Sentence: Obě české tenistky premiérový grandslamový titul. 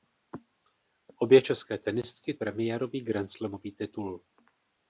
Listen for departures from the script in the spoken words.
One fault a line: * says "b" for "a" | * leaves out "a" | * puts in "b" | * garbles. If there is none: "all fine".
all fine